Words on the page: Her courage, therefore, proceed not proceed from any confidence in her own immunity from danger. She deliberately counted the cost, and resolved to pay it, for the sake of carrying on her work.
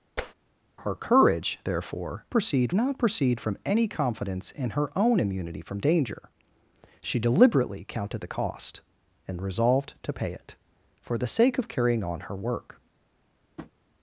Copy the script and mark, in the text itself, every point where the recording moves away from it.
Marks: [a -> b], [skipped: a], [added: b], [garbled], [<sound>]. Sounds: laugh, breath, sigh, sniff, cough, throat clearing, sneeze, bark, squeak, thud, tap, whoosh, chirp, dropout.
[tap] Her courage, therefore, proceed not proceed from any confidence in her own immunity from danger. She deliberately counted the cost, and resolved to pay it, for the sake of carrying on her work. [tap]